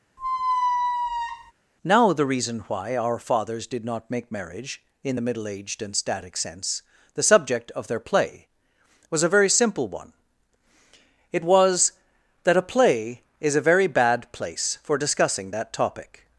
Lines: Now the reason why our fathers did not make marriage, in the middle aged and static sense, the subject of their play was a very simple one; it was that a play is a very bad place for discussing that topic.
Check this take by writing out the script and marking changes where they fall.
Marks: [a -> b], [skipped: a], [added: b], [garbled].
Now the reason why our fathers did not make marriage, in the middle aged and static sense, the subject of their play was a very simple one; it was that a play is a very bad place for discussing that topic.